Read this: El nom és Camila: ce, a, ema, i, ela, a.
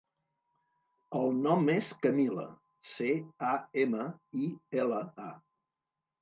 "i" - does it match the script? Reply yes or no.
yes